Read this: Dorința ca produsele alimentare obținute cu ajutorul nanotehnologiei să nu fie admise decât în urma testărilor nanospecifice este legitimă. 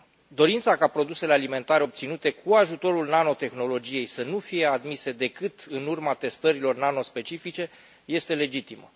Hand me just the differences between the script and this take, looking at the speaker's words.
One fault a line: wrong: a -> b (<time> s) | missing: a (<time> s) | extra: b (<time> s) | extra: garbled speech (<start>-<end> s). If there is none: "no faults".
no faults